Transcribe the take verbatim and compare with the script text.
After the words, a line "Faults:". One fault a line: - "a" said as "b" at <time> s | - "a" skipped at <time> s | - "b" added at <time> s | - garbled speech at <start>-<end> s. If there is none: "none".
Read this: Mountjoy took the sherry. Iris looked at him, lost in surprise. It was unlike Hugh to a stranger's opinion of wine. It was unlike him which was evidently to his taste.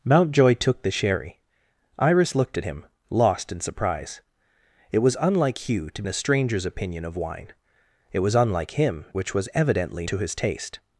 Mountjoy took the sherry. Iris looked at him, lost in surprise. It was unlike Hugh to a stranger's opinion of wine. It was unlike him which was evidently to his taste.
Faults:
none